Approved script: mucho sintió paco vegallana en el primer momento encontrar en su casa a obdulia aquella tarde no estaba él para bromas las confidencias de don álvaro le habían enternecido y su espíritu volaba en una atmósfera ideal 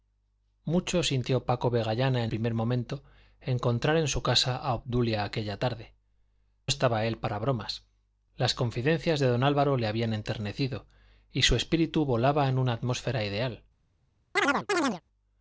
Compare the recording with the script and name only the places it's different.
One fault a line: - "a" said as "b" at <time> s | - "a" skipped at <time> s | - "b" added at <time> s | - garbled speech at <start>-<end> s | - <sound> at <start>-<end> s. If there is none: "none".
- "el" skipped at 2.3 s
- "no" skipped at 5.9 s
- chirp at 14.4-15.0 s